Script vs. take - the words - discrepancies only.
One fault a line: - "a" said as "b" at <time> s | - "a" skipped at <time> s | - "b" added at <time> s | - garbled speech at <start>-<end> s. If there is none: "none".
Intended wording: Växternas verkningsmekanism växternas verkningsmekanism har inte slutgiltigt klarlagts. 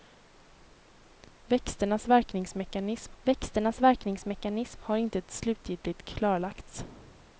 none